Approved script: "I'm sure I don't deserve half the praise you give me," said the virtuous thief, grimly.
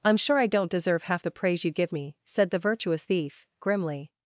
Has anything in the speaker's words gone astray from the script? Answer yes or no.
no